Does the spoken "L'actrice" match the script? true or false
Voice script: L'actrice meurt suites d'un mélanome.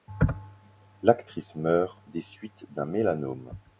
true